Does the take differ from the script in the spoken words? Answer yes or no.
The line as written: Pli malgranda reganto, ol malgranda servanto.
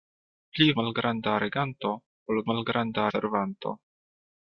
no